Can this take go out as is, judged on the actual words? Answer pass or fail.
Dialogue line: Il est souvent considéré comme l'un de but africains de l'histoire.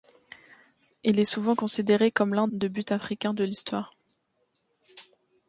pass